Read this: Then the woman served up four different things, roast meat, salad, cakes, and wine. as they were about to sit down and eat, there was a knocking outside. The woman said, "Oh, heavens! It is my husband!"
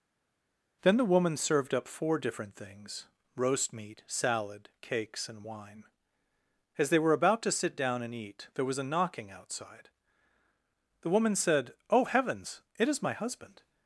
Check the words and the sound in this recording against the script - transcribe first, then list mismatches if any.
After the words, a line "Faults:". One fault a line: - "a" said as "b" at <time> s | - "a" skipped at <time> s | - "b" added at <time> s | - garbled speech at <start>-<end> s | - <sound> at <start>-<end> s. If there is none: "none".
Then the woman served up four different things, roast meat, salad, cakes, and wine. as they were about to sit down and eat, there was a knocking outside. The woman said, "Oh, heavens! It is my husband!"
Faults:
none